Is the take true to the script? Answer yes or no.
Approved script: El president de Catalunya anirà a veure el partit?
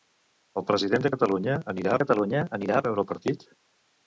no